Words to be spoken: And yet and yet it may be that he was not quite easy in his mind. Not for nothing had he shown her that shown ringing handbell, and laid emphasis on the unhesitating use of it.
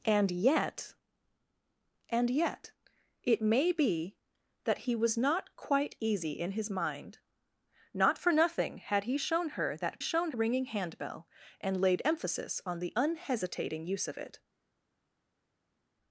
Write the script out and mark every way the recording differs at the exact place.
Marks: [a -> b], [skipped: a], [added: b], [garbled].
And yet and yet it may be that he was not quite easy in his mind. Not for nothing had he shown her that shown ringing handbell, and laid emphasis on the unhesitating use of it.